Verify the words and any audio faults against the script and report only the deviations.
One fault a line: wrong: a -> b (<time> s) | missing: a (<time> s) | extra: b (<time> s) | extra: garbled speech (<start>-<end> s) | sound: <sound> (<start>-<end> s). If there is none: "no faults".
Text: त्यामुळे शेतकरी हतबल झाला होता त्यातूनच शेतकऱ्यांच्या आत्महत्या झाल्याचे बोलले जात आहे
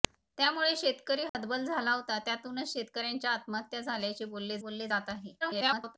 sound: dropout (1.3-1.3 s)
extra: बोलले (4.6 s)
extra: garbled speech (5.4-6.0 s)